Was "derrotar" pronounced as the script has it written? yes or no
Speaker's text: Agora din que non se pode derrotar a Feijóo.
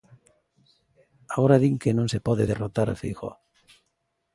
yes